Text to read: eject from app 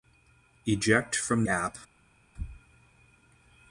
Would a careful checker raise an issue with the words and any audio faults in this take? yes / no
no